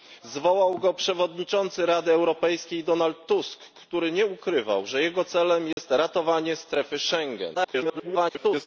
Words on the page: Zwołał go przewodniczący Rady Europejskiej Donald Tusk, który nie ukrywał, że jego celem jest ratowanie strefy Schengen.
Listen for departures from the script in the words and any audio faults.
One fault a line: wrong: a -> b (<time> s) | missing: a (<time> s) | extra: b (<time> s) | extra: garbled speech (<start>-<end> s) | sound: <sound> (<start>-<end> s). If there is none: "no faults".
sound: dropout (5.7-5.8 s)
extra: garbled speech (7.5-8.7 s)